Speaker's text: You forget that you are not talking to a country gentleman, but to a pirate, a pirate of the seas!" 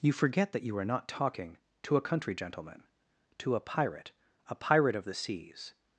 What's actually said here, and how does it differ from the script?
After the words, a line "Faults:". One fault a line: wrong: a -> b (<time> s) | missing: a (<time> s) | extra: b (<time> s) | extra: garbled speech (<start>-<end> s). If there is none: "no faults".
You forget that you are not talking to a country gentleman, to a pirate, a pirate of the seas!"
Faults:
missing: but (2.8 s)